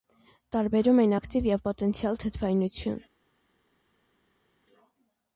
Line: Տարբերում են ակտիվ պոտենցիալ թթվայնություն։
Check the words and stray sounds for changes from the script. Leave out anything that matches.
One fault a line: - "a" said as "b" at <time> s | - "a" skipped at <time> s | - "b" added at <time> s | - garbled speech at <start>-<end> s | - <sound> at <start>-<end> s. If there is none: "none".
- "և" added at 1.5 s